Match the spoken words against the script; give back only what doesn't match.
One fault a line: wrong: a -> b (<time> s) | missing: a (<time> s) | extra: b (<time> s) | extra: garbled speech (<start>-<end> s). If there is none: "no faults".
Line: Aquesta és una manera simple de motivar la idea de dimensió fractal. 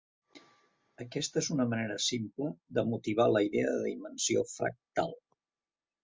no faults